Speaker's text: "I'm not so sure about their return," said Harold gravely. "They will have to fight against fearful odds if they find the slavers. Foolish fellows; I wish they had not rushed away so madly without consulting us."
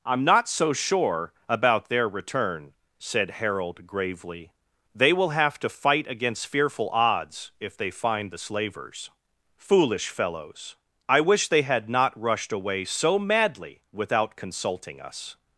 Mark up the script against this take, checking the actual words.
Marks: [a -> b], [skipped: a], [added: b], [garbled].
"I'm not so sure about their return," said Harold gravely. "They will have to fight against fearful odds if they find the slavers. Foolish fellows; I wish they had not rushed away so madly without consulting us."